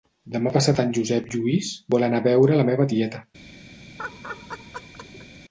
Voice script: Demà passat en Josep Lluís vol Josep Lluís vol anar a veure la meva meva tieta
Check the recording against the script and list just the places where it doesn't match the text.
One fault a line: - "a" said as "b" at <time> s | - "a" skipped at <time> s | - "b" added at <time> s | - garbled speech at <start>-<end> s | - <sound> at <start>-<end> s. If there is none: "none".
- "Josep Lluís vol" skipped at 2.1 s
- "meva" skipped at 2.9 s
- laugh at 4.0-5.3 s